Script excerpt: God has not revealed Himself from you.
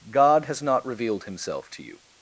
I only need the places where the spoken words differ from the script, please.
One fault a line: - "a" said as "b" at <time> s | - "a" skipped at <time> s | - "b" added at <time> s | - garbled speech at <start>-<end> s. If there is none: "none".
- "from" said as "to" at 1.7 s